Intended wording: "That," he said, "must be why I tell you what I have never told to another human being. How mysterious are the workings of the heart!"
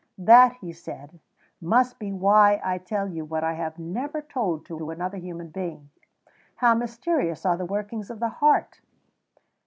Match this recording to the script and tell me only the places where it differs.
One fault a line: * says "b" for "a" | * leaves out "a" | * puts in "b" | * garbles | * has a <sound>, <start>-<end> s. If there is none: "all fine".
* puts in "to"